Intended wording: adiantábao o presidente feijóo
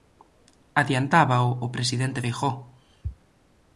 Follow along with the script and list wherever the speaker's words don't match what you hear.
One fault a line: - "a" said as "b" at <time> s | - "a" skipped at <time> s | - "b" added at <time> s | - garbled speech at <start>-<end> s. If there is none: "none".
none